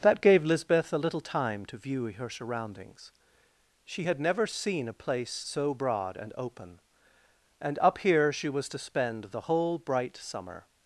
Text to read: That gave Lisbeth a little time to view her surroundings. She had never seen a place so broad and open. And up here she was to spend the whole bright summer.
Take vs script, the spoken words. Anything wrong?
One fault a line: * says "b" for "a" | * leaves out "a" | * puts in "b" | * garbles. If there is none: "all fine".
all fine